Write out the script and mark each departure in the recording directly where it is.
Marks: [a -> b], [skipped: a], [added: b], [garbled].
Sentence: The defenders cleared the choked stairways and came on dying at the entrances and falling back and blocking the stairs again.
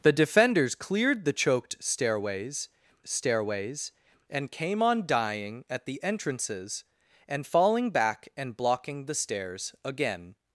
The defenders cleared the choked stairways [added: stairways] and came on dying at the entrances and falling back and blocking the stairs again.